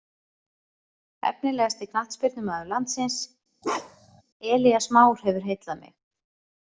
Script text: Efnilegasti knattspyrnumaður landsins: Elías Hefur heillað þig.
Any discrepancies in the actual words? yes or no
yes